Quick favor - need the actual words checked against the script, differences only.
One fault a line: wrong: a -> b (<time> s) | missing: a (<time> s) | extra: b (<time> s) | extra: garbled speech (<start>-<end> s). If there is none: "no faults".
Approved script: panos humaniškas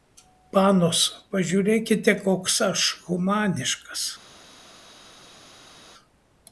extra: pažiūrėkite koks aš (1.4 s)